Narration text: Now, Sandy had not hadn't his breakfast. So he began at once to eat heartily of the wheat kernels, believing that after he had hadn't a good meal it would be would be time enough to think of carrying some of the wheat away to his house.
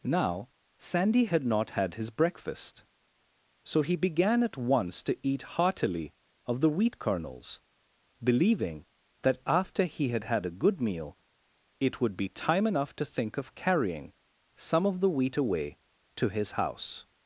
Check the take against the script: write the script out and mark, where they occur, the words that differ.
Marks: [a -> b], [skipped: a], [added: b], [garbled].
Now, Sandy had not [hadn't -> had] his breakfast. So he began at once to eat heartily of the wheat kernels, believing that after he had [hadn't -> had] a good meal it would be [skipped: would be] time enough to think of carrying some of the wheat away to his house.